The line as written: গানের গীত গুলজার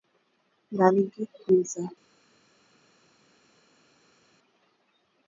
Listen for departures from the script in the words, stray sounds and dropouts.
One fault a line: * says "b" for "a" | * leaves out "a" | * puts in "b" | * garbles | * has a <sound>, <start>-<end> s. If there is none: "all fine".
all fine